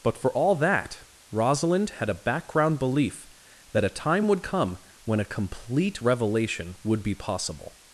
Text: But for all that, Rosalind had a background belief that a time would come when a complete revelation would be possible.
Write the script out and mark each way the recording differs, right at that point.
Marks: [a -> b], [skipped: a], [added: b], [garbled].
But for all that, Rosalind had a background belief that a time would come when a complete revelation would be possible.